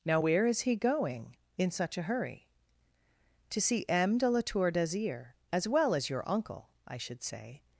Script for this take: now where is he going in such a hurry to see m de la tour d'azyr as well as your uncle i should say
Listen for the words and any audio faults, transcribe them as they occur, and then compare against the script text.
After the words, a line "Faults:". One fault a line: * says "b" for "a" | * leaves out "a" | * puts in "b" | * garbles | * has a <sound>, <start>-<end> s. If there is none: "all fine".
now where is he going in such a hurry to see m de la tour d'azyr as well as your uncle i should say
Faults:
all fine